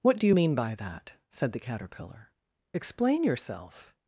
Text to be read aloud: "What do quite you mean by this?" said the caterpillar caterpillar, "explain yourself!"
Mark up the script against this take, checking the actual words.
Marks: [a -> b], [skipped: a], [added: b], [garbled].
"What do [skipped: quite] you mean by [this?" -> that] said the caterpillar [skipped: caterpillar,] "explain yourself!"